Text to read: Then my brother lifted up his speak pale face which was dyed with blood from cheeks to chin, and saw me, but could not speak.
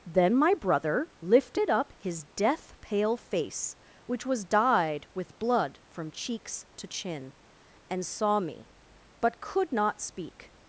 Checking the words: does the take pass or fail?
fail